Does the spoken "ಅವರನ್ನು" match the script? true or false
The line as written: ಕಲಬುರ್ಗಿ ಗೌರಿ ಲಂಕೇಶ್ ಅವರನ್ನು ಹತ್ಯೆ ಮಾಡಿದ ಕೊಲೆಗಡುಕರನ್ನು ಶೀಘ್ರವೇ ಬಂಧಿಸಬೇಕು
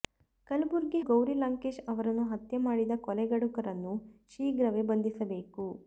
true